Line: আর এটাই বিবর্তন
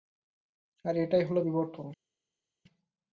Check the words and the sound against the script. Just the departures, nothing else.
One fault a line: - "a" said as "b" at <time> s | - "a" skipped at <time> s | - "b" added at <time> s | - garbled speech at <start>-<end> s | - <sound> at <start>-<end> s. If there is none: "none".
- "হলো" added at 1.2 s